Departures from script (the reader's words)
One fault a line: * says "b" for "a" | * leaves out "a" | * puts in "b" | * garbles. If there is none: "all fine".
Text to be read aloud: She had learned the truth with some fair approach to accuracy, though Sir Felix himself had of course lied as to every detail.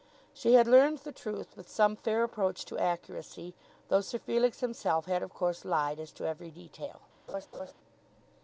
all fine